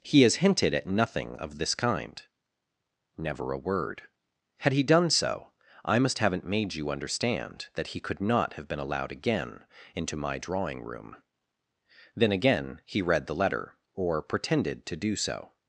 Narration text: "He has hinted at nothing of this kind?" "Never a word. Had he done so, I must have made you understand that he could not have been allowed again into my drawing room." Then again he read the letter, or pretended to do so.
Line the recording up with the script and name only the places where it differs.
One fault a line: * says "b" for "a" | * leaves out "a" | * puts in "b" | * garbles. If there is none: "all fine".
* says "haven't" for "have"